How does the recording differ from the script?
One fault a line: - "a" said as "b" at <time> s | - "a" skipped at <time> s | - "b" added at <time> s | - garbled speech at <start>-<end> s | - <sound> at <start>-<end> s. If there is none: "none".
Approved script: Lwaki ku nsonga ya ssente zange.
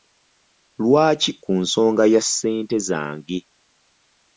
none